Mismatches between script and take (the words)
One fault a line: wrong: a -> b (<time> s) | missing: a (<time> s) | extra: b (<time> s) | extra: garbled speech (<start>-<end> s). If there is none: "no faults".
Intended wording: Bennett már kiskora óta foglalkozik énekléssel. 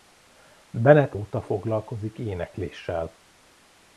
missing: már kiskora (1.1 s)